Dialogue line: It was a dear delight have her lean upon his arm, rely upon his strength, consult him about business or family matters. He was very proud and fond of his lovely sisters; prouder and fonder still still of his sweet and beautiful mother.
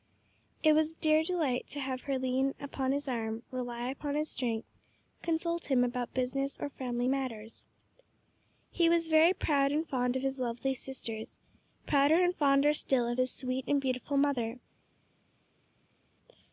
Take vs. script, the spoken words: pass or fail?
fail